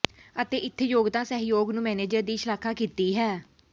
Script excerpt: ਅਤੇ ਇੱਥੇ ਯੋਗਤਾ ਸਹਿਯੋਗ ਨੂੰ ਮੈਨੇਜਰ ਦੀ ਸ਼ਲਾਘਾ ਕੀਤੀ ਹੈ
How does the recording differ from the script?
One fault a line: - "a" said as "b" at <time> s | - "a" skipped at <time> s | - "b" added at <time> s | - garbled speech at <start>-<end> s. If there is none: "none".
none